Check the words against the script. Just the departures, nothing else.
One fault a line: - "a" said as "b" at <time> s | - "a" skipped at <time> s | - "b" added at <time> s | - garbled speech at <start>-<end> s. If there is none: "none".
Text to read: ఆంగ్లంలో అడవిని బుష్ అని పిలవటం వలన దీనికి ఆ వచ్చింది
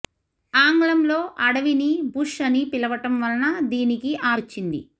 none